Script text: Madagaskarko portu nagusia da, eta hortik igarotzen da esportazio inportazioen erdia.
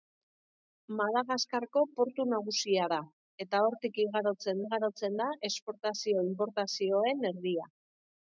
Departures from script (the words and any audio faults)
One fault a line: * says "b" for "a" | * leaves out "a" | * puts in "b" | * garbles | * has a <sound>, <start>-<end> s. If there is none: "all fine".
* puts in "igarotzen"